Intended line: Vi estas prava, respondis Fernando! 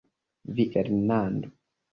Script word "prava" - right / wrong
wrong